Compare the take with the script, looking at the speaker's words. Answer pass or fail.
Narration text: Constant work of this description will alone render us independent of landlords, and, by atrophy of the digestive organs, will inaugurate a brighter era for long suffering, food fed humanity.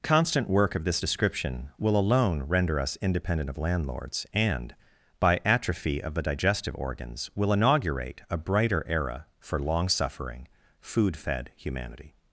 pass